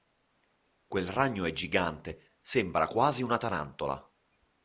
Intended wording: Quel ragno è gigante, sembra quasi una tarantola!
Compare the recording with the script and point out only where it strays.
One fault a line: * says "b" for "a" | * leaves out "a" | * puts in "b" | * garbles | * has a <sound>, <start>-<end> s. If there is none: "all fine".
all fine